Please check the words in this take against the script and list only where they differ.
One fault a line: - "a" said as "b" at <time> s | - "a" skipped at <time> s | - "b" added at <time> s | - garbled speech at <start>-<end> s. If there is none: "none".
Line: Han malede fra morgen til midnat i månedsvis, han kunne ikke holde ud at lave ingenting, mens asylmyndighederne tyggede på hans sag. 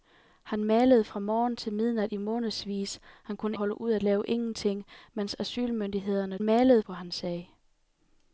- "ikke" skipped at 3.6 s
- "tyggede" said as "malede" at 6.4 s